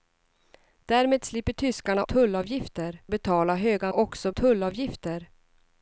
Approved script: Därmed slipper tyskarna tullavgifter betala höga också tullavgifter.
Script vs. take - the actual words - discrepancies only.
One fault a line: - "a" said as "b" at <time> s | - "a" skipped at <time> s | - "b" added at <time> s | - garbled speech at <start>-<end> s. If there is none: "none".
none